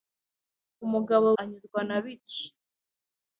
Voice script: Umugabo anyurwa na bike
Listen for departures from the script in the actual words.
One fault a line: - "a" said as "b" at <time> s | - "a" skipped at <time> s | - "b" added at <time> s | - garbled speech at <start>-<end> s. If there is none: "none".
none